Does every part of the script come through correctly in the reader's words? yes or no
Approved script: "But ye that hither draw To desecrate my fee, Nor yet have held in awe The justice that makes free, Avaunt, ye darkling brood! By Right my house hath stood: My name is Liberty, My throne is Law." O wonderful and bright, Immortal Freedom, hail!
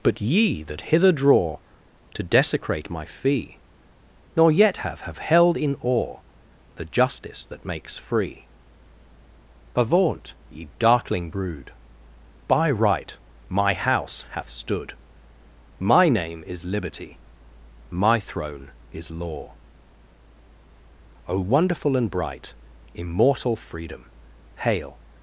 no